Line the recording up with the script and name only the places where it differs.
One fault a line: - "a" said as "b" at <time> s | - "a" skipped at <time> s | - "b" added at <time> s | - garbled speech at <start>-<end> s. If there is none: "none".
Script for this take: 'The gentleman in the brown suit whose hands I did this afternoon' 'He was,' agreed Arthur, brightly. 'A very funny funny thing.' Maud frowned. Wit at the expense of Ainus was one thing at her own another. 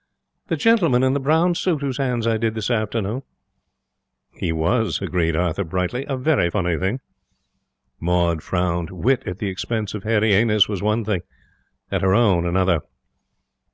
- "funny" skipped at 6.8 s
- "Hairy" added at 10.0 s